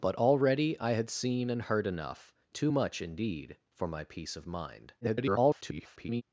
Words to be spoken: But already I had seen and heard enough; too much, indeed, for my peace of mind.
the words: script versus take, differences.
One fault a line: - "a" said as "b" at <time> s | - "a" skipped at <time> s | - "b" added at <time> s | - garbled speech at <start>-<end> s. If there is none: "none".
- garbled speech at 5.0-6.2 s